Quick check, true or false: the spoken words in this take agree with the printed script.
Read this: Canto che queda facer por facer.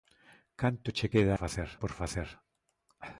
true